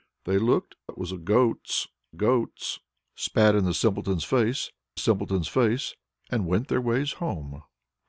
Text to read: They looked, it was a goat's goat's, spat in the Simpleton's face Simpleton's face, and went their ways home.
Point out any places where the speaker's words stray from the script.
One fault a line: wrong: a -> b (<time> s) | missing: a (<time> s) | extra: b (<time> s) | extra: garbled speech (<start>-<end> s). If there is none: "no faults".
no faults